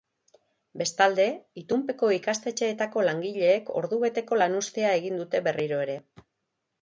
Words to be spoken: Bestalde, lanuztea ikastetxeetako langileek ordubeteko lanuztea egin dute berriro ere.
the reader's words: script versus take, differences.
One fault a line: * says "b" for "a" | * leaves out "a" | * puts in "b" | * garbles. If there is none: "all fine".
* says "itunpeko" for "lanuztea"